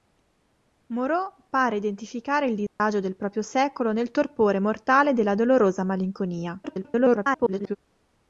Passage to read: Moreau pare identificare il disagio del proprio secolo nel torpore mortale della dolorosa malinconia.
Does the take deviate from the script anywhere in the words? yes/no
yes